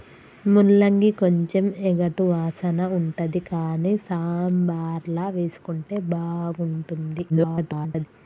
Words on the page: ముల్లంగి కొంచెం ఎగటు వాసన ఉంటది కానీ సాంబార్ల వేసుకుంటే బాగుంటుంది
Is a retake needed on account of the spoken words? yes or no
yes